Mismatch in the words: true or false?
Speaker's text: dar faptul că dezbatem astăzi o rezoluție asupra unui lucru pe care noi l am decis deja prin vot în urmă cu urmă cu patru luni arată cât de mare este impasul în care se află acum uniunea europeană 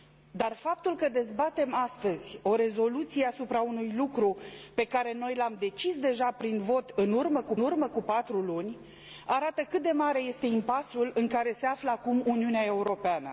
false